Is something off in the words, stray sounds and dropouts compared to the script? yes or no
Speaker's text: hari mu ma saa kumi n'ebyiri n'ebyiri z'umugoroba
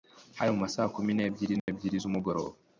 yes